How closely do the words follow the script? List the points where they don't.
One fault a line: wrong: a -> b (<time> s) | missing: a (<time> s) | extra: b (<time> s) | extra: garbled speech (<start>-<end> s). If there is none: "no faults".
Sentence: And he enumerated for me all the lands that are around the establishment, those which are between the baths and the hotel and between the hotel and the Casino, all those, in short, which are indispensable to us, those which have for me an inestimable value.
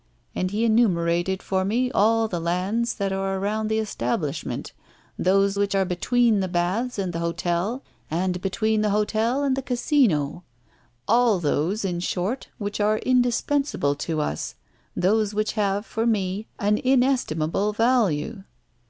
no faults